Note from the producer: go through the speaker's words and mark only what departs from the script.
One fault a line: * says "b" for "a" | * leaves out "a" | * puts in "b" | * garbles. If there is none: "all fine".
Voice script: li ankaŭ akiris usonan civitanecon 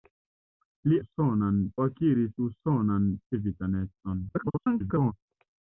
* says "usonan" for "ankaŭ"
* garbles